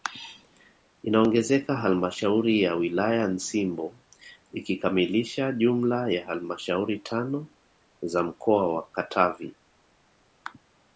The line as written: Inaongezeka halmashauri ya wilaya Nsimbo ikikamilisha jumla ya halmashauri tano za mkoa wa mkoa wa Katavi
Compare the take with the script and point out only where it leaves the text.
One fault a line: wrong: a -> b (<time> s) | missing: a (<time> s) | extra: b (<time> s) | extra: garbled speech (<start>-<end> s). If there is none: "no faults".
missing: mkoa wa (8.9 s)